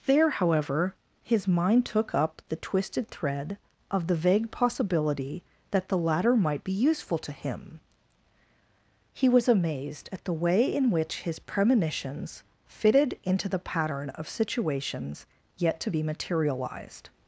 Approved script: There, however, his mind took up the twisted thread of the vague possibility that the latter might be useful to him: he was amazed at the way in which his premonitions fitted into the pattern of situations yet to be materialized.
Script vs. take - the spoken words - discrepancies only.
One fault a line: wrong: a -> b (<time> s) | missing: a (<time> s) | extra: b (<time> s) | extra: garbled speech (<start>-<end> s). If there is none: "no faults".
no faults